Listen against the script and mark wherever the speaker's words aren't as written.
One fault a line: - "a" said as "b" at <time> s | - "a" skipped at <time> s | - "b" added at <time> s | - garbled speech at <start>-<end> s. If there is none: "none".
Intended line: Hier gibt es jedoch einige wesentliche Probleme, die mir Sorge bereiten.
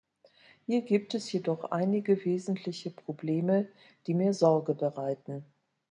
none